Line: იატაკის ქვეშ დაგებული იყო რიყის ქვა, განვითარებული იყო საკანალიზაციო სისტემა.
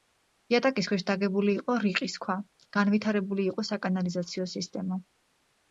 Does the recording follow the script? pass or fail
pass